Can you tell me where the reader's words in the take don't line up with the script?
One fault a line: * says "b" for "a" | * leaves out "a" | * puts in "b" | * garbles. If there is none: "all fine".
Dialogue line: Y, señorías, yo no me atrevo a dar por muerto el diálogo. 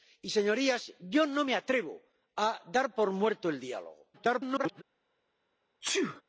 * garbles